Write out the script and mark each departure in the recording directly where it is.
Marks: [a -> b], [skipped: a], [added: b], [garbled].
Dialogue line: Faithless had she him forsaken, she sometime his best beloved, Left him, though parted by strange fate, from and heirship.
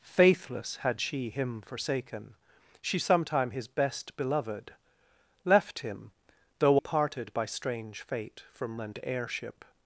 Faithless had she him forsaken, she sometime his best beloved, Left him, though parted by strange fate, from and heirship.